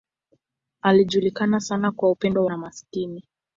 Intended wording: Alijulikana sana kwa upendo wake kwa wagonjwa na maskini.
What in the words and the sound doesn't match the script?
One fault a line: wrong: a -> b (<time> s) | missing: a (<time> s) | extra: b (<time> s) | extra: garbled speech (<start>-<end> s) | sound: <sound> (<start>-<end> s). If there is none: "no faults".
missing: wake kwa wagonjwa (2.5 s)